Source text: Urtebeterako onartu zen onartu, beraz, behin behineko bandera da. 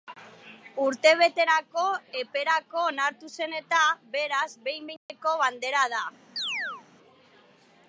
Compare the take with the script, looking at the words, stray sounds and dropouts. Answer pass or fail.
fail